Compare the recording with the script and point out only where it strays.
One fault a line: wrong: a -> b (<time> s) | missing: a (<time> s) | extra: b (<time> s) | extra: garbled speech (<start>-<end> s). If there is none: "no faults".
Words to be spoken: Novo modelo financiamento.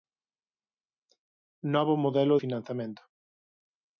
no faults